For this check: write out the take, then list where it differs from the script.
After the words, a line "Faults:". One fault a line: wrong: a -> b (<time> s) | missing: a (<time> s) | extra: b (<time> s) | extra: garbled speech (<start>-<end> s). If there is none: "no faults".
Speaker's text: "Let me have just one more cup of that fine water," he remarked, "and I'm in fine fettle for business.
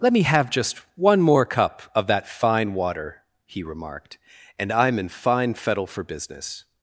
"Let me have just one more cup of that fine water," he remarked, "and I'm in fine fettle for business.
Faults:
no faults